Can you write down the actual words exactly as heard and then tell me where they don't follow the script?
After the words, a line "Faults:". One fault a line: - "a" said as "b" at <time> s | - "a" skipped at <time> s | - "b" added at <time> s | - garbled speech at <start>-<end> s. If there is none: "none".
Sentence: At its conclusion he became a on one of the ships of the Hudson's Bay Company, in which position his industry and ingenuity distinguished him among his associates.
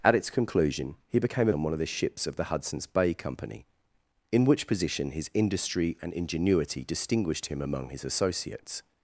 At its conclusion he became a on one of the ships of the Hudson's Bay Company, in which position his industry and ingenuity distinguished him among his associates.
Faults:
none